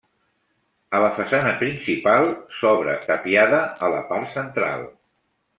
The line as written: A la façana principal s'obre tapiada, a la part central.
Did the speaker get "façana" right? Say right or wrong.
right